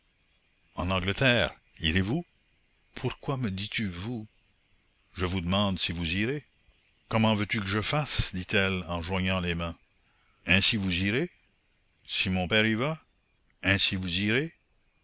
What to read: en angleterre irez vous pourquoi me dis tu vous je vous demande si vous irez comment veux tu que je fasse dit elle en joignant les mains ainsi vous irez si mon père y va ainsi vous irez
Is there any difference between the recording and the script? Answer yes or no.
no